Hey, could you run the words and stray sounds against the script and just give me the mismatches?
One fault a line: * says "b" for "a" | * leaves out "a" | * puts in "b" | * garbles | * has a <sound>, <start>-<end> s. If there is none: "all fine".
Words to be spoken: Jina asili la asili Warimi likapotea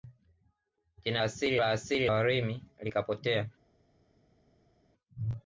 all fine